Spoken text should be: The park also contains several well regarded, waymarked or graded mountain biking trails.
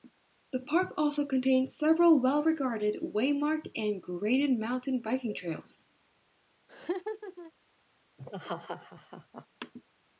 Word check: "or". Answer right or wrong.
wrong